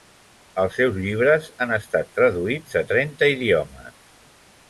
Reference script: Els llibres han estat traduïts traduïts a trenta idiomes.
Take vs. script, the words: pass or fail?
fail